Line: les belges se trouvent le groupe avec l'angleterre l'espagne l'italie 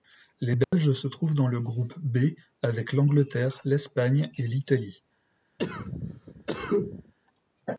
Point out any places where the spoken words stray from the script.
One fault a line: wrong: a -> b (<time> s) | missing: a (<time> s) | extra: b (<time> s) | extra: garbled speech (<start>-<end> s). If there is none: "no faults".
extra: dans (1.3 s)
extra: b (2.0 s)
extra: et (4.4 s)